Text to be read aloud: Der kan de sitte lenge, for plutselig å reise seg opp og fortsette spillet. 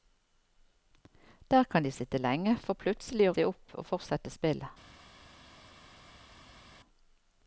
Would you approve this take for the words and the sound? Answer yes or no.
no